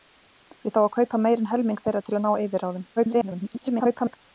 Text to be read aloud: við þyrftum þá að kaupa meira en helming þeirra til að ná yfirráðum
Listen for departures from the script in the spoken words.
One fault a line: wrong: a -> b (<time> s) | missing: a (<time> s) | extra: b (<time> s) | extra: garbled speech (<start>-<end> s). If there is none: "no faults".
missing: þyrftum (0.7 s)
extra: garbled speech (3.0-4.2 s)